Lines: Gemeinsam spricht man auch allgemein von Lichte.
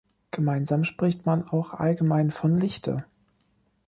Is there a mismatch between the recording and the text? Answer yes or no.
no